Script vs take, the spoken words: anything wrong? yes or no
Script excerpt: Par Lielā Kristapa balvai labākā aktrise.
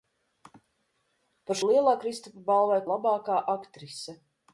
no